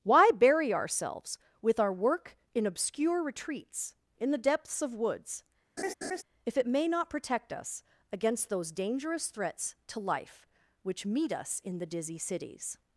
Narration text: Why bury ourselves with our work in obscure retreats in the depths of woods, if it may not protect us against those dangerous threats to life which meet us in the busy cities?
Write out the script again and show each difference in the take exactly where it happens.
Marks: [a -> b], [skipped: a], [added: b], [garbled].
Why bury ourselves with our work in obscure retreats in the depths of woods, if it may not protect us against those dangerous threats to life which meet us in the [busy -> dizzy] cities?